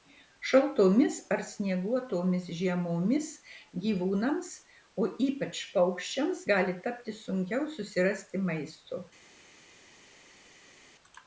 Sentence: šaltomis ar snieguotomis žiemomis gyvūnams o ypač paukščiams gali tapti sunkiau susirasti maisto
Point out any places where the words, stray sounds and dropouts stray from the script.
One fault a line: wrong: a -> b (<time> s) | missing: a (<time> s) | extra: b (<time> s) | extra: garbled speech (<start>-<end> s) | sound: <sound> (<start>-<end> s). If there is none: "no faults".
no faults